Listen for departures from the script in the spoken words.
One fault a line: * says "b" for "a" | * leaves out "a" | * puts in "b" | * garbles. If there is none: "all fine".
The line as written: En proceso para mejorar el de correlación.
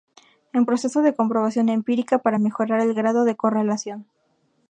* puts in "de comprobación empírica"
* puts in "grado"